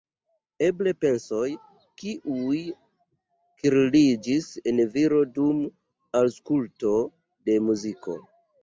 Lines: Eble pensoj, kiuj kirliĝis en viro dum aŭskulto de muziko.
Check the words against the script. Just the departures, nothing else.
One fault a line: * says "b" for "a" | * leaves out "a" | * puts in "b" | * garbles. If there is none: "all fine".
all fine